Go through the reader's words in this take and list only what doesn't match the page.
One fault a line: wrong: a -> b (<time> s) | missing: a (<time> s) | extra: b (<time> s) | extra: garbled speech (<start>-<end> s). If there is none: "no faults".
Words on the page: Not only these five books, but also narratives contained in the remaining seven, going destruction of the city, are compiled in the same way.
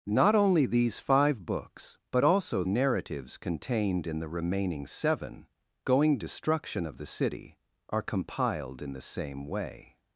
no faults